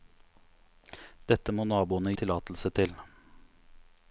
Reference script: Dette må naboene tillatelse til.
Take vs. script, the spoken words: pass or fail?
pass